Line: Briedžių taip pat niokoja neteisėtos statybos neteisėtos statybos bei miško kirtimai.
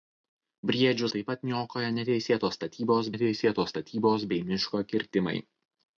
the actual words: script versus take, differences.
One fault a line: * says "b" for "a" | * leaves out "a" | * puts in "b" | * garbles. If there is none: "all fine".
all fine